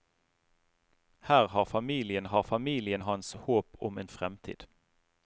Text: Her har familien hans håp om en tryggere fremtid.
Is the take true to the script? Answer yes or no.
no